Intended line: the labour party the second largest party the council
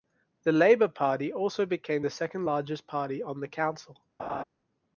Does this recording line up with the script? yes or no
no